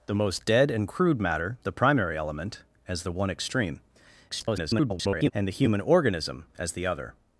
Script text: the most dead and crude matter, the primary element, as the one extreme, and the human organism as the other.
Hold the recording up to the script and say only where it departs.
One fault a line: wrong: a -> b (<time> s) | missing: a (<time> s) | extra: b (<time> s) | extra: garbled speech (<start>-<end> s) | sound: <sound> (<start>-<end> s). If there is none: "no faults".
extra: garbled speech (4.3-5.3 s)